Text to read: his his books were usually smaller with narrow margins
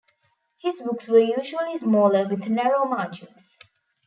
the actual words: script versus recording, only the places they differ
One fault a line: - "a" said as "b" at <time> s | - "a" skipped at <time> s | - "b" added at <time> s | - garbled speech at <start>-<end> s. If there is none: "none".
- "his" skipped at 0.8 s